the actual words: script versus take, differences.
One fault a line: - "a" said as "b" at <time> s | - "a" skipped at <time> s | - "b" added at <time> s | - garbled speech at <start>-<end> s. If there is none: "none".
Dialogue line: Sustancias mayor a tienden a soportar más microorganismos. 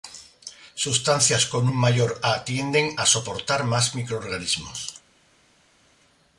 - "con un" added at 1.4 s